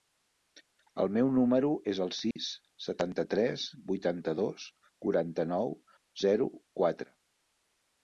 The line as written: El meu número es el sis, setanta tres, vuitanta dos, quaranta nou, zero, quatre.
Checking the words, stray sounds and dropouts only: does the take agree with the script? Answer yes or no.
no